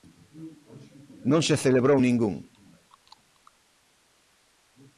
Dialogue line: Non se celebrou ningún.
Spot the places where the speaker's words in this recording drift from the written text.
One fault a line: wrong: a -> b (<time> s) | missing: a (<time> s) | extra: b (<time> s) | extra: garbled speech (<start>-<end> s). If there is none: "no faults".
no faults